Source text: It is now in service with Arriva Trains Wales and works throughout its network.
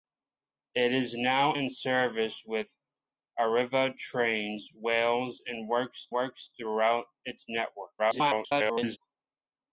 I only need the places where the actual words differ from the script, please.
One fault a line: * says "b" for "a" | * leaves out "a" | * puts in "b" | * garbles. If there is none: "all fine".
* puts in "works"
* garbles